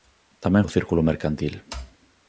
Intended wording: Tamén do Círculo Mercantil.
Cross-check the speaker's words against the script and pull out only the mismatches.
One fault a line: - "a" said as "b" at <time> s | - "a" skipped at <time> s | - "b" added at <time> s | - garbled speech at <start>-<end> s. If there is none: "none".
none